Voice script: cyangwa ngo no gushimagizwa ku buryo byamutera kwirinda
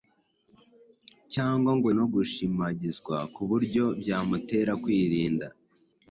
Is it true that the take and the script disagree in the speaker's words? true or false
false